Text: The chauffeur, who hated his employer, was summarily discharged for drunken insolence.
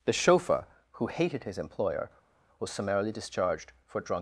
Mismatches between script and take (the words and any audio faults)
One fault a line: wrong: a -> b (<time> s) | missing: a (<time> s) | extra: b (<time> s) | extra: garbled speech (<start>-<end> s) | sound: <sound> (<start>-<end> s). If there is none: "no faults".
wrong: drunken insolence -> drunk (4.0 s)